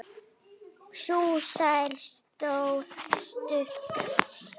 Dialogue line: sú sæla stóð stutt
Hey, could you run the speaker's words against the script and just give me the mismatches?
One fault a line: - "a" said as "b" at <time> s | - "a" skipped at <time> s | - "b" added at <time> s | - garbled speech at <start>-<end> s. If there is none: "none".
none